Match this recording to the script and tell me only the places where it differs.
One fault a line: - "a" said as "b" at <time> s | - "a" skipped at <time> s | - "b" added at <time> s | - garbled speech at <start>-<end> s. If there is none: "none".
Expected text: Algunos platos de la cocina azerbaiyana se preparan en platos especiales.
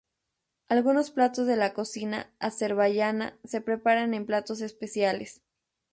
none